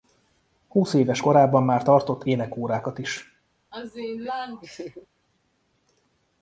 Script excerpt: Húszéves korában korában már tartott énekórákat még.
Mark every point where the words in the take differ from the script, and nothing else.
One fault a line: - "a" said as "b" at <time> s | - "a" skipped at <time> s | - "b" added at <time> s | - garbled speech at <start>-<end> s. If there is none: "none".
- "korában" skipped at 1.6 s
- "még" said as "is" at 3.0 s